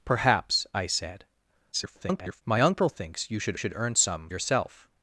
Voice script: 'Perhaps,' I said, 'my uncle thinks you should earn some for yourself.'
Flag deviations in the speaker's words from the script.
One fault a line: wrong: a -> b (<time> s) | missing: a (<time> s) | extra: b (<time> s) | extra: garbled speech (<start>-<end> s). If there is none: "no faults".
extra: garbled speech (1.7-2.4 s)
extra: should (3.6 s)
missing: for (4.3 s)